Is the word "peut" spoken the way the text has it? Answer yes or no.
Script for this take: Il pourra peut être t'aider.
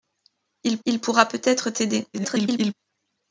yes